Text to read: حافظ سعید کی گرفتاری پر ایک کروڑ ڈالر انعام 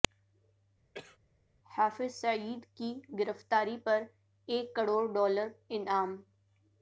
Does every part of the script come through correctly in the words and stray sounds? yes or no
no